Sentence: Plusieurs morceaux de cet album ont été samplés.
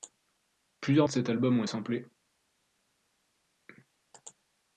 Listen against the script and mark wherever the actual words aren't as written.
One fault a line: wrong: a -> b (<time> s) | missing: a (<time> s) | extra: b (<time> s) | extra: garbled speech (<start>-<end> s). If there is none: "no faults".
missing: morceaux (1.1 s)
missing: été (1.6 s)